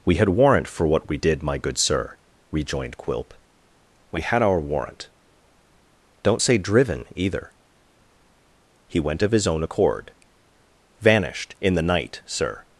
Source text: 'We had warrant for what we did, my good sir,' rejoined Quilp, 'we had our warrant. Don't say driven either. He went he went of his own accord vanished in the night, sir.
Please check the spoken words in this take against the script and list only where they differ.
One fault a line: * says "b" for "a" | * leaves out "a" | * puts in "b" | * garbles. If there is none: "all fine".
* leaves out "he went"